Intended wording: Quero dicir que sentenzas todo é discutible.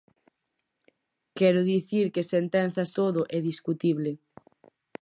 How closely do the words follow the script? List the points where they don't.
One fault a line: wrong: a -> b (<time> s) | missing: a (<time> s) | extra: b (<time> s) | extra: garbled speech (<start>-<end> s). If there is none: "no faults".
no faults